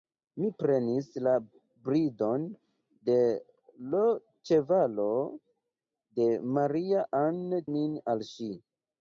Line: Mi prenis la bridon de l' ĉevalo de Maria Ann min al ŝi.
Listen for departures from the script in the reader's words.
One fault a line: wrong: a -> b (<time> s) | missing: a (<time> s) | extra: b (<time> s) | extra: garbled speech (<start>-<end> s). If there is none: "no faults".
no faults